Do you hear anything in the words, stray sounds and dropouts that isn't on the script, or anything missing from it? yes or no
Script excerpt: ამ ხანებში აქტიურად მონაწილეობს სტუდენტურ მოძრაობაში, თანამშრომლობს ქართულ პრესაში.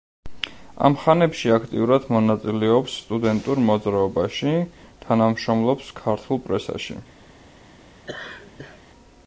yes